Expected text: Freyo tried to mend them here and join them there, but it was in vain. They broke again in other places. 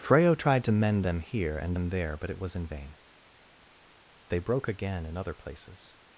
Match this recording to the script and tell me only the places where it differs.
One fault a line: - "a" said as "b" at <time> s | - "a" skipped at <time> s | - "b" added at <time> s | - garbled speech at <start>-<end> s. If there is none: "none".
- "join" skipped at 1.8 s